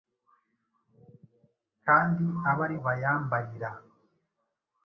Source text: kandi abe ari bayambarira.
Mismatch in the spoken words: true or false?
false